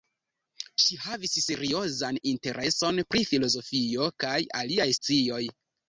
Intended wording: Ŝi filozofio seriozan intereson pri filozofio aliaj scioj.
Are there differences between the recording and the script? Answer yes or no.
yes